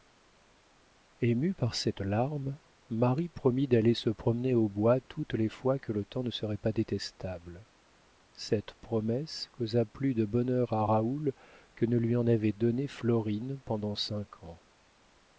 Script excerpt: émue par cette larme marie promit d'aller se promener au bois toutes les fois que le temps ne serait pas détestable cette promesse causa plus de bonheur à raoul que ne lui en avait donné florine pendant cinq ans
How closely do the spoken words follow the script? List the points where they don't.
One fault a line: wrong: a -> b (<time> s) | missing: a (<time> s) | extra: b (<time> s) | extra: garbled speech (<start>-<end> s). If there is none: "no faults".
no faults